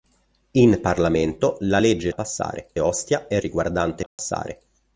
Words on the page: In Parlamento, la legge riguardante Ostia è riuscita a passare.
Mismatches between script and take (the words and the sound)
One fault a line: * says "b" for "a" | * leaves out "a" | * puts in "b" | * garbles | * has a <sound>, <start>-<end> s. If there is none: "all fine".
* says "passare" for "riguardante"
* says "riguardante" for "riuscita"
* has a dropout, 4.1-4.2 s